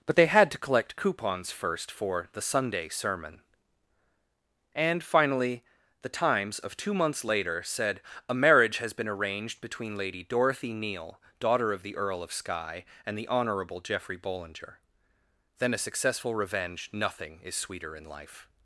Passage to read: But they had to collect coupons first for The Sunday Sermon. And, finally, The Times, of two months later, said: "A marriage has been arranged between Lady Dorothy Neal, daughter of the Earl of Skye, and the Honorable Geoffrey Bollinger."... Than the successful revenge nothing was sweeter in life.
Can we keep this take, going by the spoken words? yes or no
no